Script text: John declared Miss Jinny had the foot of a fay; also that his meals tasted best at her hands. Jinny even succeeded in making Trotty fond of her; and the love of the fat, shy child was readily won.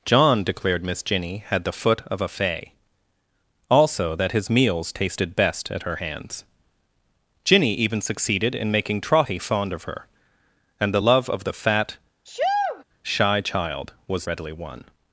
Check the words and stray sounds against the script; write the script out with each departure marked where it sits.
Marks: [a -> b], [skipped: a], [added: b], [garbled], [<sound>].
John declared Miss Jinny had the foot of a fay; also that his meals tasted best at her hands. Jinny even succeeded in making Trotty fond of her; and the love of the fat, [sneeze] shy child was readily won.